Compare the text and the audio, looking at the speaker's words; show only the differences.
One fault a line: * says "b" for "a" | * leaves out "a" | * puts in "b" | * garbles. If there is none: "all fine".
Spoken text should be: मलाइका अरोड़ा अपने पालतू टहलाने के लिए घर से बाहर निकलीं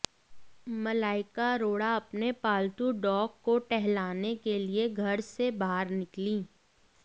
* puts in "डॉग को"